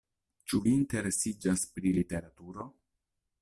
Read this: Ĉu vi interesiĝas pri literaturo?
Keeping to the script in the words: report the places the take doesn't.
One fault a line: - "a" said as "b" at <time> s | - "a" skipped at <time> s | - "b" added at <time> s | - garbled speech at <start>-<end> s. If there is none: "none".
none